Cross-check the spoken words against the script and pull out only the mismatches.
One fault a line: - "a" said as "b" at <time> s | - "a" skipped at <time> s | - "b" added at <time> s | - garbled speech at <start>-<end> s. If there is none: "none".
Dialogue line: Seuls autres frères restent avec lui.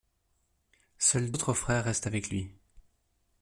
none